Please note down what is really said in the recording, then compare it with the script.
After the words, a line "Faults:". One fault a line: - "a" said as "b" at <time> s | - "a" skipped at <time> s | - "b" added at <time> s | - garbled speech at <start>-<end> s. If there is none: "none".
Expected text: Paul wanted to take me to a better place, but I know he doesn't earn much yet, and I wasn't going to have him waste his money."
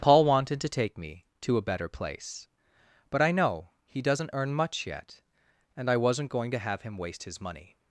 Paul wanted to take me to a better place, but I know he doesn't earn much yet, and I wasn't going to have him waste his money."
Faults:
none